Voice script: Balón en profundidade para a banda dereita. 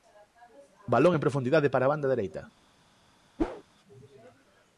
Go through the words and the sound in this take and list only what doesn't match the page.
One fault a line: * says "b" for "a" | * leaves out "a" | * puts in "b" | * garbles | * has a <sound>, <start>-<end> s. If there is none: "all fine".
* has a whoosh, 3.4-3.6 s